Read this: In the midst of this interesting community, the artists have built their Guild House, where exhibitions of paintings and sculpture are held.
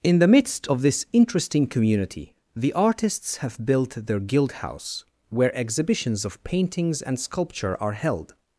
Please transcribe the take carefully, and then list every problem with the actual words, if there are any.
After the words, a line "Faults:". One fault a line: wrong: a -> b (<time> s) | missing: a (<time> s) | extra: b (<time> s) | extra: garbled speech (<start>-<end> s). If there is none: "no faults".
In the midst of this interesting community, the artists have built their Guild House, where exhibitions of paintings and sculpture are held.
Faults:
no faults